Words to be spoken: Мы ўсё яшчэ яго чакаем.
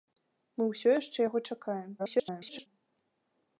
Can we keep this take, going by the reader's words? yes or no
no